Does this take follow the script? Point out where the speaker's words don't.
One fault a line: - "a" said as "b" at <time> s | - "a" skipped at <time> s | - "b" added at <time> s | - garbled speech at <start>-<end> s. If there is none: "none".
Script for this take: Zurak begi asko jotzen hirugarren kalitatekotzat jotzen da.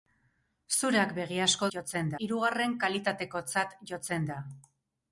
none